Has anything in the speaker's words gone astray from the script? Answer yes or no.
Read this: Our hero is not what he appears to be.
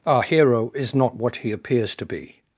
no